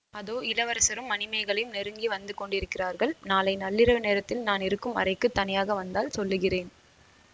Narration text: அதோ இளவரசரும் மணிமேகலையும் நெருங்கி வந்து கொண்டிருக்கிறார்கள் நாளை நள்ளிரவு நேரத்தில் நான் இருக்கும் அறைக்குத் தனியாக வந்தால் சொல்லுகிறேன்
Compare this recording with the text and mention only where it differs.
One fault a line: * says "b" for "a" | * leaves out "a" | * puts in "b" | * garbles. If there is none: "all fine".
all fine